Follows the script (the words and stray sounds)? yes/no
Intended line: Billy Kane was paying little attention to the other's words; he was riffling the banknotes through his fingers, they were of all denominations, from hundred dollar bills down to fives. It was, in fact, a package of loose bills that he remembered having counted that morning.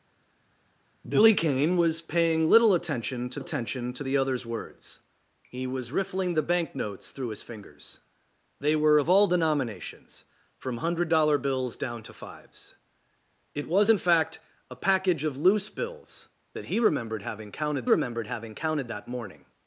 no